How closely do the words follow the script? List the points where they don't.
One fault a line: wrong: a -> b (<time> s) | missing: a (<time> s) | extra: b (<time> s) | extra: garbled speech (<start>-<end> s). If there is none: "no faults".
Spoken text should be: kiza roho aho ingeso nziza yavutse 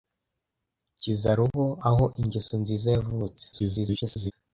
extra: garbled speech (3.5-4.3 s)